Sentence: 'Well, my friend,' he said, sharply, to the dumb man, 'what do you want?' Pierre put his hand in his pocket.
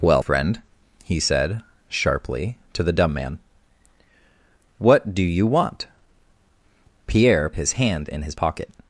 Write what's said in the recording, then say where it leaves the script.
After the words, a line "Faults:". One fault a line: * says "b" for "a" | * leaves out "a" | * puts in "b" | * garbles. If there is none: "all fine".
'Well, friend,' he said, sharply, to the dumb man, 'what do you want?' Pierre his hand in his pocket.
Faults:
* leaves out "my"
* leaves out "put"